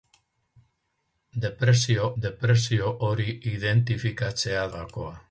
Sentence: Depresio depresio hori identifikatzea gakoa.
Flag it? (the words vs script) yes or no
no